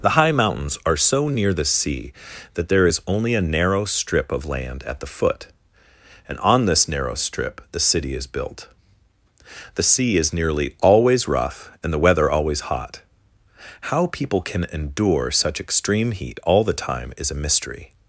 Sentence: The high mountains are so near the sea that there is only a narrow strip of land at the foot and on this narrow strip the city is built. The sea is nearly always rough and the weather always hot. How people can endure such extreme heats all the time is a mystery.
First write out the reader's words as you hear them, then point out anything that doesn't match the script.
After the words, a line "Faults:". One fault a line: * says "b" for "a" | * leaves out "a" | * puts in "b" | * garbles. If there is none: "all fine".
The high mountains are so near the sea that there is only a narrow strip of land at the foot and on this narrow strip the city is built. The sea is nearly always rough and the weather always hot. How people can endure such extreme heat all the time is a mystery.
Faults:
* says "heat" for "heats"